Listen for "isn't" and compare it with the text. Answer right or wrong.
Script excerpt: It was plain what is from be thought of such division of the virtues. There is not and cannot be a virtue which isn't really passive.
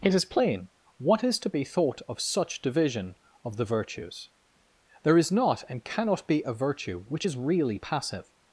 wrong